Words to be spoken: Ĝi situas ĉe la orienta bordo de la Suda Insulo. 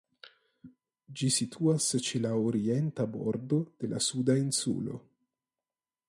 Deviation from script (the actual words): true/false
false